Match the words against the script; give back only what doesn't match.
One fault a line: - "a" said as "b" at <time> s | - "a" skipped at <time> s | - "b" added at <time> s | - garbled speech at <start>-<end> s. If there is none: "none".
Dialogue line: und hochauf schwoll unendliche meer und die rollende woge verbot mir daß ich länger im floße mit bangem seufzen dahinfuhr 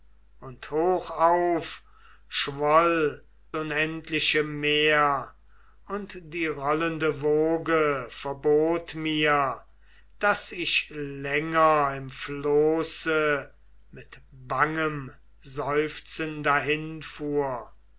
none